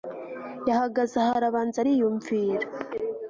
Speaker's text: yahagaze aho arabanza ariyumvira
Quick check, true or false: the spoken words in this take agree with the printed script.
true